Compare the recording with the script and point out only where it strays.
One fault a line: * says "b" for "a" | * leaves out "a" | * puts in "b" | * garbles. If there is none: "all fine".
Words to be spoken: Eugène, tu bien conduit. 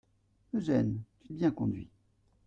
all fine